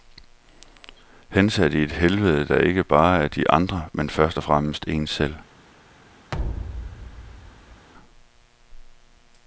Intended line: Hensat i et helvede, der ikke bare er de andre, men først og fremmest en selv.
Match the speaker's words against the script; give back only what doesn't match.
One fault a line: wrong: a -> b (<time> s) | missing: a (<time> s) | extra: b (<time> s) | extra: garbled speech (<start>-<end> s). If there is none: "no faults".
no faults